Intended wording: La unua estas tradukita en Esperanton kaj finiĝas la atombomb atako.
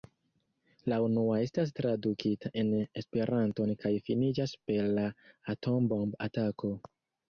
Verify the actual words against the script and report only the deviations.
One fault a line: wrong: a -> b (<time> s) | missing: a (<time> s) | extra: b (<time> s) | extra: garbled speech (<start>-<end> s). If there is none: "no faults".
extra: per (4.7 s)